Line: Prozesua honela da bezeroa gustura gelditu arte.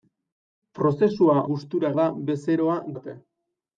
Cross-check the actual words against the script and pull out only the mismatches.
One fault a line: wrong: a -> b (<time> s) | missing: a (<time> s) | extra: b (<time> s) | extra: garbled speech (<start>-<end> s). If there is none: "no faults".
wrong: honela -> gustura (1.5 s)
missing: gustura gelditu (2.8 s)